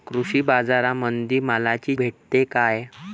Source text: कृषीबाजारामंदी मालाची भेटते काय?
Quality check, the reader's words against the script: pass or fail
pass